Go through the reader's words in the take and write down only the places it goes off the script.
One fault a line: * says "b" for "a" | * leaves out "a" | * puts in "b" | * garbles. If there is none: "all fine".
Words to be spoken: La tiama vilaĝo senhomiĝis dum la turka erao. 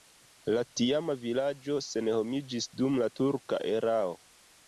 all fine